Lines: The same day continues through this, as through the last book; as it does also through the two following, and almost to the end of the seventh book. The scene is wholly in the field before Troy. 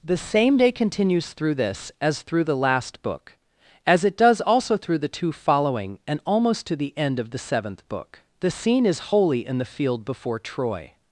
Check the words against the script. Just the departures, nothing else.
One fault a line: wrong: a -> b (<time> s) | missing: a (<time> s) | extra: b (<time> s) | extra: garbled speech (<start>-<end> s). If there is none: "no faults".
no faults